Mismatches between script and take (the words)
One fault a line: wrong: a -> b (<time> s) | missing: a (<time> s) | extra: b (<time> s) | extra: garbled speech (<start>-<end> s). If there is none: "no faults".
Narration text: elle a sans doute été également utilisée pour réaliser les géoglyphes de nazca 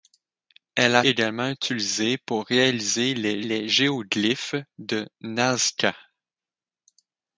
missing: sans doute été (1.1 s)
extra: les (3.4 s)